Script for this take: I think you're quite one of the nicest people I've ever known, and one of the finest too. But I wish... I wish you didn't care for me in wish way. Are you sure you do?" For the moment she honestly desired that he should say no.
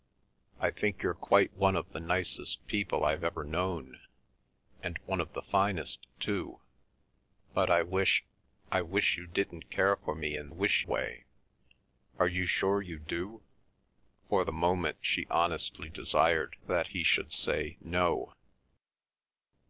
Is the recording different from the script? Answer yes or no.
no